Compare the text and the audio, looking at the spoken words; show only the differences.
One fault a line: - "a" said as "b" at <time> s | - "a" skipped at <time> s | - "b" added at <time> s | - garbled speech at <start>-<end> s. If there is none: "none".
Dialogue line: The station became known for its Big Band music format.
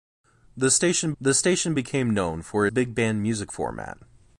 - "the station" added at 1.2 s
- "its" skipped at 2.7 s